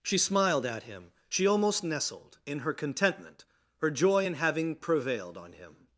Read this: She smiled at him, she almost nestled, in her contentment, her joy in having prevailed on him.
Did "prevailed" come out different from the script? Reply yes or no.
no